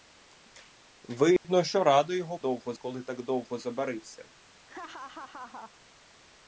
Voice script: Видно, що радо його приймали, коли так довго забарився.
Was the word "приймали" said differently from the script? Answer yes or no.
yes